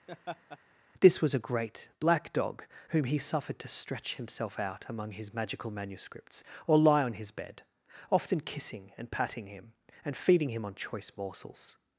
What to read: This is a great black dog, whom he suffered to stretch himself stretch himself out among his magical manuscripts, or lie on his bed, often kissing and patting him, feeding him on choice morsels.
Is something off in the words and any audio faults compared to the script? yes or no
yes